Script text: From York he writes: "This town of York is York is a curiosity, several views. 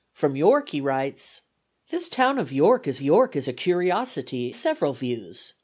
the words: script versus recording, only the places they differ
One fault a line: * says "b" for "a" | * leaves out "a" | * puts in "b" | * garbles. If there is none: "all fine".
all fine